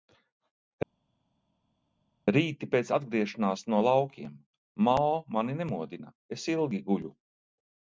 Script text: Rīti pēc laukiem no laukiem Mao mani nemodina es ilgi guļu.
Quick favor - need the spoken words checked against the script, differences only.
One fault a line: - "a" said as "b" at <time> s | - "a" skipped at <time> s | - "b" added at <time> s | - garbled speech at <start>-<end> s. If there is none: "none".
- "laukiem" said as "atgriešanās" at 3.0 s